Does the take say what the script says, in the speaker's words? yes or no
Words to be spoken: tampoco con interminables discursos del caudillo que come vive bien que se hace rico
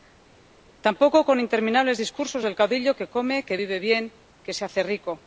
no